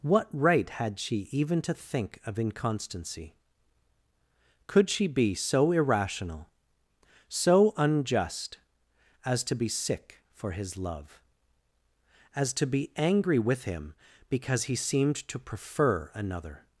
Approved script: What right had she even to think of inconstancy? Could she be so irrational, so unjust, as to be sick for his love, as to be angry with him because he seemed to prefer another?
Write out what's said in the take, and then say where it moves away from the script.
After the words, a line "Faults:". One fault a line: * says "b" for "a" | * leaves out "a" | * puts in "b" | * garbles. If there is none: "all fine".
What right had she even to think of inconstancy? Could she be so irrational, so unjust, as to be sick for his love, as to be angry with him because he seemed to prefer another?
Faults:
all fine